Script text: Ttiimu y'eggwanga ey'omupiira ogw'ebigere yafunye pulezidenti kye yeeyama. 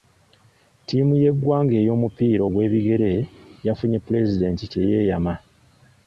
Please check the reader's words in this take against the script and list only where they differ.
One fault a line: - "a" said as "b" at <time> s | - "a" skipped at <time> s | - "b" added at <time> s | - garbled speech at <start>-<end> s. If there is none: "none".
none